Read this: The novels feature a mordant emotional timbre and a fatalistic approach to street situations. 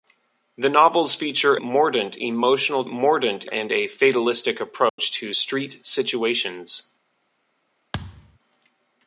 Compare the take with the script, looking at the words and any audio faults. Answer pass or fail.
fail